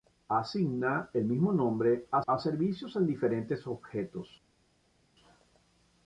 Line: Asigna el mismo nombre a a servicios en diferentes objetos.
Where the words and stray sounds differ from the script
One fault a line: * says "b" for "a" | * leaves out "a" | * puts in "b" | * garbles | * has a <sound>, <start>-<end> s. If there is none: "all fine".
all fine